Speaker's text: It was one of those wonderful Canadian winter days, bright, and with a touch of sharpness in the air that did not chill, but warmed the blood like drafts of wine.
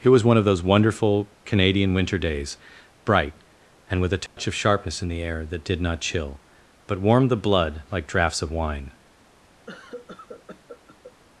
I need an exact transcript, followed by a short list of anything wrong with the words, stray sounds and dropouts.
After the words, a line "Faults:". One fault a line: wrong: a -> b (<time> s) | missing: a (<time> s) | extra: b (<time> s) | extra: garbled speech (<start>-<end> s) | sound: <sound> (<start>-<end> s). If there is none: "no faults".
It was one of those wonderful Canadian winter days, bright, and with a touch of sharpness in the air that did not chill, but warmed the blood like drafts of wine.
Faults:
sound: dropout (4.3-4.4 s)
sound: cough (9.7-11.1 s)